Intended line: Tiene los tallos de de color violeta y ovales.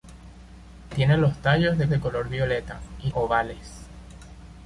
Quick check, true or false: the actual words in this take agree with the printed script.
true